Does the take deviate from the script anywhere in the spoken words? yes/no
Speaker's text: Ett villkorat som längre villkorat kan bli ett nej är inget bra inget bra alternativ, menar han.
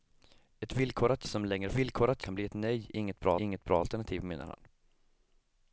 no